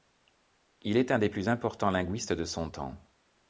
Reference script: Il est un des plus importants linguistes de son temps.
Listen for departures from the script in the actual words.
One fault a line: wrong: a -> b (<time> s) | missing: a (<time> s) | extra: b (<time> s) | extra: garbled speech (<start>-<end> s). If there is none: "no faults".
no faults